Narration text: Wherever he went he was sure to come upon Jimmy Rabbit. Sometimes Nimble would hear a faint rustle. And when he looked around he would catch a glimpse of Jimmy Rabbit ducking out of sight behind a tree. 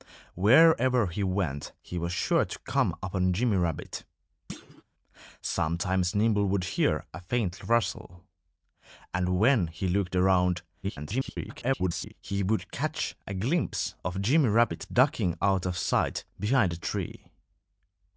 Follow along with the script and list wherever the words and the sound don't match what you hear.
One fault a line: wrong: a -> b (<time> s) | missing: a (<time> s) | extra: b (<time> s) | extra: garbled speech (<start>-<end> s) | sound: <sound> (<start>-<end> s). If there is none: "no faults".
sound: thud (4.5-4.8 s)
extra: garbled speech (10.8-12.1 s)